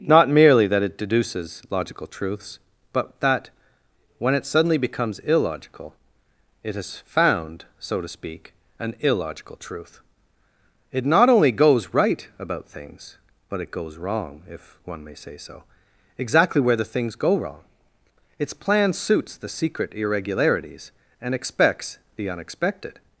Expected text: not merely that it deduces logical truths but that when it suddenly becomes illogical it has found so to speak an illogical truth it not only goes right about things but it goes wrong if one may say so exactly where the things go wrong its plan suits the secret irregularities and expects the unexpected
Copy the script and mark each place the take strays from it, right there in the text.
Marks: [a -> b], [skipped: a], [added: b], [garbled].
not merely that it deduces logical truths but that when it suddenly becomes illogical it has found so to speak an illogical truth it not only goes right about things but it goes wrong if one may say so exactly where the things go wrong its plan suits the secret irregularities and expects the unexpected